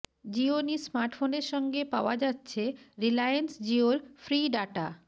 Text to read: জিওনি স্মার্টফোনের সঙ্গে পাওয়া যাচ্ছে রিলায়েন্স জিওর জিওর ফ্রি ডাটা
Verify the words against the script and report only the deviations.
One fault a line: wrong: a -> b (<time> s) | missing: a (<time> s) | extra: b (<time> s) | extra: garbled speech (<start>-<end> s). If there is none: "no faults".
missing: জিওর (4.0 s)